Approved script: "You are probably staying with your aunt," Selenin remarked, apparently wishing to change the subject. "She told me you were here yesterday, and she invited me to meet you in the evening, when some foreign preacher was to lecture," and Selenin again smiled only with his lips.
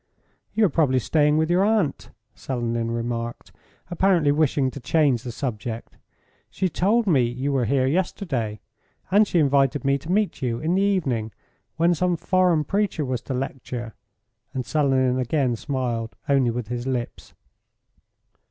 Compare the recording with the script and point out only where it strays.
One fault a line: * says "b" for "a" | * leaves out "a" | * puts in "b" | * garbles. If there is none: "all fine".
all fine